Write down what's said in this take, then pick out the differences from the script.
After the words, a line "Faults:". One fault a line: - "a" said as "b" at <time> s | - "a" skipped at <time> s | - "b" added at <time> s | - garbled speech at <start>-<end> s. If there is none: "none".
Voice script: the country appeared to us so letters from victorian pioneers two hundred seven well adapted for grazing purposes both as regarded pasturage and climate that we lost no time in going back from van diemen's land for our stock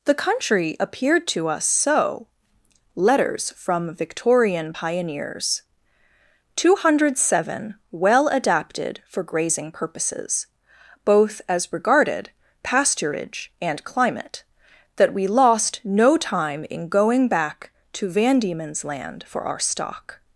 the country appeared to us so letters from victorian pioneers two hundred seven well adapted for grazing purposes both as regarded pasturage and climate that we lost no time in going back to van diemen's land for our stock
Faults:
- "from" said as "to" at 17.9 s